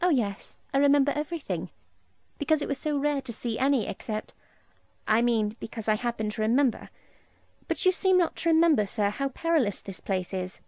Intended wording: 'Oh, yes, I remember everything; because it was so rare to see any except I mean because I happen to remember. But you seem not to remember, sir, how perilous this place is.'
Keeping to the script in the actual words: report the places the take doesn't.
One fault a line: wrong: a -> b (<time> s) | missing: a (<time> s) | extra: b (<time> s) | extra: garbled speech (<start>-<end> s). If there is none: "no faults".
no faults